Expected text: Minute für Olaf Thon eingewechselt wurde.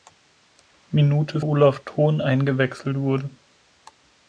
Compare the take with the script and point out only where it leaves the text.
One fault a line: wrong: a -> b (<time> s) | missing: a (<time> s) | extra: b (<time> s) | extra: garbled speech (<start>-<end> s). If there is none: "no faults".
missing: für (1.4 s)